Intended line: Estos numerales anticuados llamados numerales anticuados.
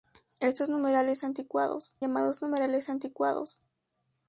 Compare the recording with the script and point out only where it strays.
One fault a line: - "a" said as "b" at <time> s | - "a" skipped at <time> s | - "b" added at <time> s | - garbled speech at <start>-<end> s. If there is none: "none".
none